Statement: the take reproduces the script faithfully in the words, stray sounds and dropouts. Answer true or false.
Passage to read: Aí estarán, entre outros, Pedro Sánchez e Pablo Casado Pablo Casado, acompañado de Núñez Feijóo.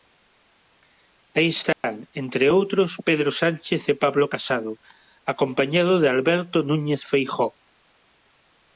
false